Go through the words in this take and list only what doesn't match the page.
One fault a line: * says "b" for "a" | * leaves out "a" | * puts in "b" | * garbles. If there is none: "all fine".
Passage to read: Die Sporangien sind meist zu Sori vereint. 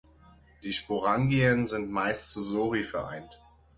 all fine